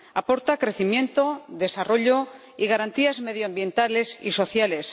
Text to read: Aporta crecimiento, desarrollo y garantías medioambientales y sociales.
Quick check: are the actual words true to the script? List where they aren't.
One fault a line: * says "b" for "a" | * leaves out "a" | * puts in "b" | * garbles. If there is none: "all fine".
all fine